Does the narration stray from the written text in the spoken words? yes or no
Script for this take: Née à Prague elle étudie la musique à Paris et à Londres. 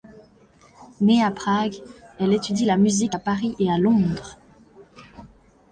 no